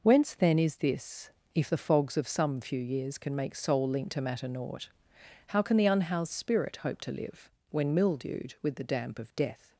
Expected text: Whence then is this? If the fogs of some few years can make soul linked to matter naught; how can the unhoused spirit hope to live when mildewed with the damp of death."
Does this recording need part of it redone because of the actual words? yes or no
no